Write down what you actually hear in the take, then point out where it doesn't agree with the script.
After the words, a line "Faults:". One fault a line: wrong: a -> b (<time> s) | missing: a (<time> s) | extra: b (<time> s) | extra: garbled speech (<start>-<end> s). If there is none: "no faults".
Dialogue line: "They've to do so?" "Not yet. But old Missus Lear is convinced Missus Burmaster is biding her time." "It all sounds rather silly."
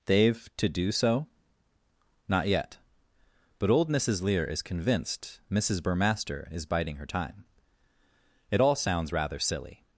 "They've to do so?" "Not yet. But old Missus Lear is convinced Missus Burmaster is biding her time." "It all sounds rather silly."
Faults:
no faults